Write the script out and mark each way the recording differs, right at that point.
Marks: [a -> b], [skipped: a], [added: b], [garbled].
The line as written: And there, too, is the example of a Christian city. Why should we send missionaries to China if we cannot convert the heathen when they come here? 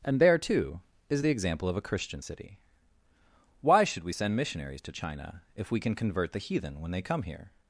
And there, too, is the example of a Christian city. Why should we send missionaries to China if we [cannot -> can] convert the heathen when they come here?